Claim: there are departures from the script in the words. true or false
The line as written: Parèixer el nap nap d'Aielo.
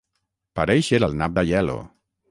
true